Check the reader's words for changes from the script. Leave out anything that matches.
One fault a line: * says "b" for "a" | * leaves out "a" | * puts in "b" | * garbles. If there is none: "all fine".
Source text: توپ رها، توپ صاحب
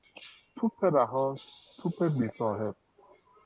* puts in "بی"